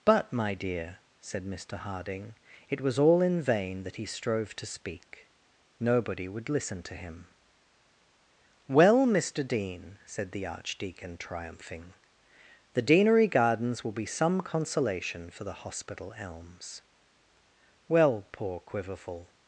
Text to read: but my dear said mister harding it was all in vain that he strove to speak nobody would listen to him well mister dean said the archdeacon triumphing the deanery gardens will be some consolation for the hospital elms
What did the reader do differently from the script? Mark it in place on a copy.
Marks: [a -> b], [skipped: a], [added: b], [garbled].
but my dear said mister harding it was all in vain that he strove to speak nobody would listen to him well mister dean said the archdeacon triumphing the deanery gardens will be some consolation for the hospital elms [added: well poor quiverful]